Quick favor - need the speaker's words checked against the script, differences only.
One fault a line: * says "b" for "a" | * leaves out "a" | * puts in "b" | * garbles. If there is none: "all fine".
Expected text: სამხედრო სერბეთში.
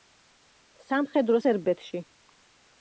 all fine